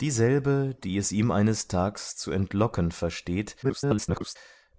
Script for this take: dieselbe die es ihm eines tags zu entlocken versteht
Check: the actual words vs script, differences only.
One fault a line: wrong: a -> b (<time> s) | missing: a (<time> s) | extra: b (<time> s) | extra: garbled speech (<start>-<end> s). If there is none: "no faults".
extra: garbled speech (3.6-4.4 s)